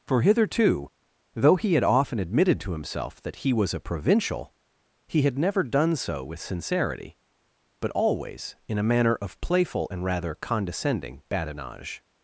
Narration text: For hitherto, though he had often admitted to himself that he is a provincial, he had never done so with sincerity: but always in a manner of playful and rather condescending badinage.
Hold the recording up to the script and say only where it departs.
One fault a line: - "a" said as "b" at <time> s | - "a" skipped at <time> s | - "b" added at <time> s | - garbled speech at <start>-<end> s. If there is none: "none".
- "is" said as "was" at 3.5 s